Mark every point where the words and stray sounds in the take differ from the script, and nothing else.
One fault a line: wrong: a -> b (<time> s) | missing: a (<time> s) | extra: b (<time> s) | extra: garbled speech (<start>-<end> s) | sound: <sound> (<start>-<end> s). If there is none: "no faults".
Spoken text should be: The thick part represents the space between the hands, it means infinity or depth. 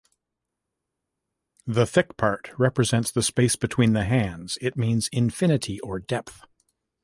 no faults